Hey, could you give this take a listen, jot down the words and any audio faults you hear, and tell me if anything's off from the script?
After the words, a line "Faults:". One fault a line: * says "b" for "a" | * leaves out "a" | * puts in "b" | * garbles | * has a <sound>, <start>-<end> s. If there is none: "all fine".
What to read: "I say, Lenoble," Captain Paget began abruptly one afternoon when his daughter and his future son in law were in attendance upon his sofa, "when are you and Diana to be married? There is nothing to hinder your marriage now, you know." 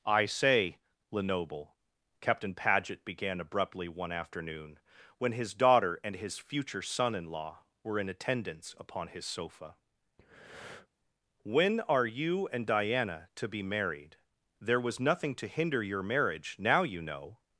"I say, Lenoble," Captain Paget began abruptly one afternoon when his daughter and his future son in law were in attendance upon his sofa, "when are you and Diana to be married? There was nothing to hinder your marriage now, you know."
Faults:
* has a breath, 10.2-10.9 s
* says "was" for "is"